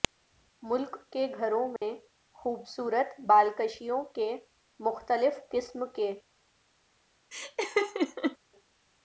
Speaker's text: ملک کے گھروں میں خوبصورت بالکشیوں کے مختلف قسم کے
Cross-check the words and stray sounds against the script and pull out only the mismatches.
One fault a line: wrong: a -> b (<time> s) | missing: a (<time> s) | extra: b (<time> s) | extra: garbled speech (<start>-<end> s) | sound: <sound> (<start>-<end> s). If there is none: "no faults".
sound: dropout (1.8-1.8 s)
sound: laugh (7.3-8.4 s)